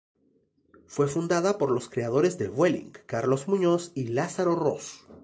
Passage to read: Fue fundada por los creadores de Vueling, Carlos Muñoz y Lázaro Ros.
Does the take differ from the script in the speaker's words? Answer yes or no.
no